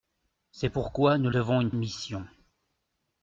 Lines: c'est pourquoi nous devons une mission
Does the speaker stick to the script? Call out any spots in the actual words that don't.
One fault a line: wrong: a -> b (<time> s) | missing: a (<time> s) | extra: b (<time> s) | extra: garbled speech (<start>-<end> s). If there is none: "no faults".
no faults